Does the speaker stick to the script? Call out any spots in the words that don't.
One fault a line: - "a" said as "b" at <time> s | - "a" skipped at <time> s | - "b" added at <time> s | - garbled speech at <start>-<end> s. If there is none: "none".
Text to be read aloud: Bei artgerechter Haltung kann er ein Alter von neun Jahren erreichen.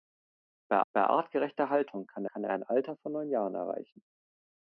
- "bei" added at 0.9 s
- "kann" added at 2.3 s